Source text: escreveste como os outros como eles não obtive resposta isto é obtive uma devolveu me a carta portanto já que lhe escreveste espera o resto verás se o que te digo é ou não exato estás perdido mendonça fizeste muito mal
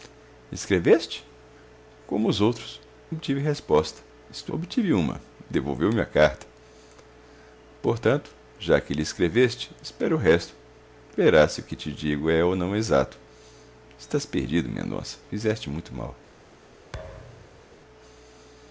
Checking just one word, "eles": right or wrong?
wrong